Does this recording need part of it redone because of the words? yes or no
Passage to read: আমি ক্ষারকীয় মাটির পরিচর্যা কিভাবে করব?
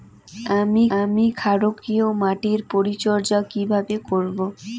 yes